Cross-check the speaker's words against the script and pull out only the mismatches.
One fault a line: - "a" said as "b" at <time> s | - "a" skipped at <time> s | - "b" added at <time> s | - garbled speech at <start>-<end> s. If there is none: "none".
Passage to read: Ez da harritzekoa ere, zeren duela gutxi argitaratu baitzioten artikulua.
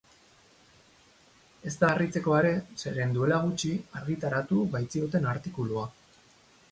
none